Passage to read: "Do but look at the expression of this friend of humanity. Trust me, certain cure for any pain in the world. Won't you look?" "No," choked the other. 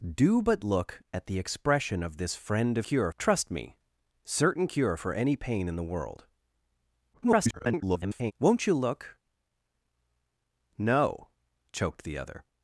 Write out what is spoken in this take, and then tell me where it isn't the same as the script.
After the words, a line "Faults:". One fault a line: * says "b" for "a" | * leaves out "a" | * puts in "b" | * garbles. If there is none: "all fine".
"Do but look at the expression of this friend of cure. Trust me, certain cure for any pain in the world. [garbled] Won't you look?" "No," choked the other.
Faults:
* says "cure" for "humanity"
* garbles